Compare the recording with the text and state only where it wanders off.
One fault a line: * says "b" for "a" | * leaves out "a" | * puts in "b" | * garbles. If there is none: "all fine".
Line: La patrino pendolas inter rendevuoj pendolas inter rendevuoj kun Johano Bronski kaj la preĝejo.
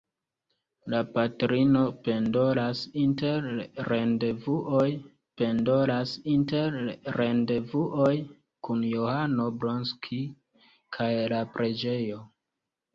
all fine